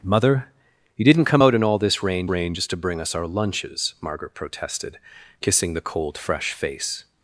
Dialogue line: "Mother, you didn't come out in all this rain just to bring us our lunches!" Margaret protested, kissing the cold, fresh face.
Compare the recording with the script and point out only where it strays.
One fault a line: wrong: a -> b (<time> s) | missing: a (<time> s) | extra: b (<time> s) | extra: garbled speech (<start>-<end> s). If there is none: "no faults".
extra: rain (2.3 s)